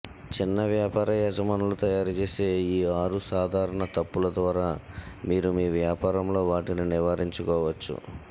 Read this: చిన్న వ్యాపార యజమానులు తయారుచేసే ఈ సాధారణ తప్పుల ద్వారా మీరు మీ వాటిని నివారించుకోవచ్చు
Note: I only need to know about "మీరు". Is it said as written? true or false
true